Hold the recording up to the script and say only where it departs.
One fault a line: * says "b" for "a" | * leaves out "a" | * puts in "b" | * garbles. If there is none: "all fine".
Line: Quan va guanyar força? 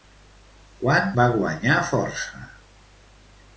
all fine